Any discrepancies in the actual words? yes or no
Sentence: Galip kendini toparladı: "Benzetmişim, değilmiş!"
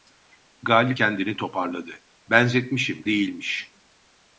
no